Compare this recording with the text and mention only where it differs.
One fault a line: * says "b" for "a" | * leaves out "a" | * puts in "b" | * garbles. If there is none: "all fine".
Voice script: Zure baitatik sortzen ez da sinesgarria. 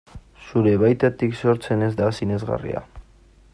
all fine